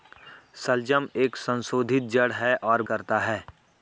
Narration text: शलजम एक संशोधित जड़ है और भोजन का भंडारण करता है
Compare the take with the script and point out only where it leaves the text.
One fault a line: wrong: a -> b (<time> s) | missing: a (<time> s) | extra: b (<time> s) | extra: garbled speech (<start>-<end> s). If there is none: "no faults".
missing: भोजन का भंडारण (2.8 s)